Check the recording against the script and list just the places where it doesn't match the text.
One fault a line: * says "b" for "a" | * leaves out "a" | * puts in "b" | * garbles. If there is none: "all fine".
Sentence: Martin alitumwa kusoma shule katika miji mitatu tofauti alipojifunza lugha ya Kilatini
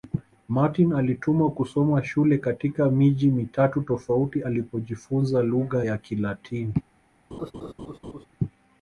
all fine